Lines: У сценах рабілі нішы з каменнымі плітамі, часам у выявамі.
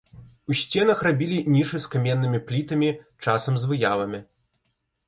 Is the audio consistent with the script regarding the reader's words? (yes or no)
no